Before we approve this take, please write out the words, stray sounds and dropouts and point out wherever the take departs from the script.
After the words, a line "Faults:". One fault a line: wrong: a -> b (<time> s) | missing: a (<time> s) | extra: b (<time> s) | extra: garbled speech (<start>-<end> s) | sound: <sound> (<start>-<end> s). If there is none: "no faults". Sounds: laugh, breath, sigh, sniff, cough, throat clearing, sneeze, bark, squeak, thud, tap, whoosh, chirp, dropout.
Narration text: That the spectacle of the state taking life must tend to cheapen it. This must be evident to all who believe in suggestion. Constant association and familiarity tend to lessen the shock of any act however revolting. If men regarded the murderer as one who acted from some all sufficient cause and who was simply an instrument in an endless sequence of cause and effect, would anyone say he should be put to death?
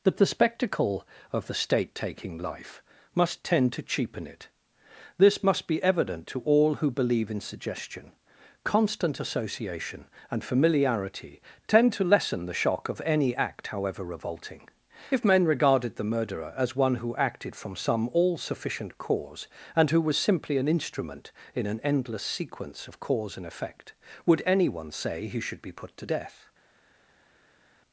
That the spectacle of the state taking life must tend to cheapen it. This must be evident to all who believe in suggestion. Constant association and familiarity tend to lessen the shock of any act however revolting. If men regarded the murderer as one who acted from some all sufficient cause and who was simply an instrument in an endless sequence of cause and effect, would anyone say he should be put to death?
Faults:
no faults